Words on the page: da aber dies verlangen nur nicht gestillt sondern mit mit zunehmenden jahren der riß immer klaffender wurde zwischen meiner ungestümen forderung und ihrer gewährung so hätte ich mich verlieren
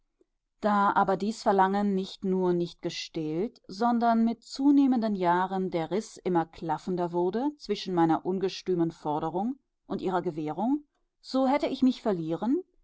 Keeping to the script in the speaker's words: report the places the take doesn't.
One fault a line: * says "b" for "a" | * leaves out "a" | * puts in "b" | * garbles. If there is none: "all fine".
* puts in "nicht"
* leaves out "mit"